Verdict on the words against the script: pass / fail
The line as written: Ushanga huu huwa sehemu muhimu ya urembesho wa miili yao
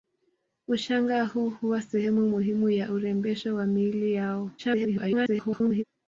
fail